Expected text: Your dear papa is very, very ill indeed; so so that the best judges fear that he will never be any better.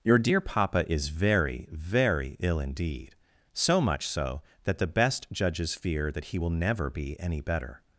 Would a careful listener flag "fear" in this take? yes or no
no